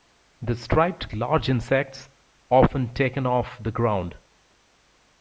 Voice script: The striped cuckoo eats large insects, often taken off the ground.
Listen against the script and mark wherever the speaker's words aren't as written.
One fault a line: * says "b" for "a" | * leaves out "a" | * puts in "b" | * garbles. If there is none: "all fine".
* leaves out "cuckoo eats"